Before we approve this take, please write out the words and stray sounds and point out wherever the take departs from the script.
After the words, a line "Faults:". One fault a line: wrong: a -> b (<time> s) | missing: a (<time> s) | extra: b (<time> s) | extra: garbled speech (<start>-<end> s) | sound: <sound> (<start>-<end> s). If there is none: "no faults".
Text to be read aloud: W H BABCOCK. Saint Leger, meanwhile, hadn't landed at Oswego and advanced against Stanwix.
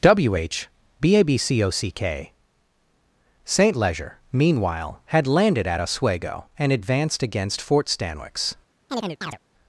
W H BABCOCK. Saint Leger, meanwhile, had landed at Oswego and advanced against Fort Stanwix.
Faults:
wrong: hadn't -> had (5.1 s)
extra: Fort (7.6 s)
sound: chirp (8.9-9.4 s)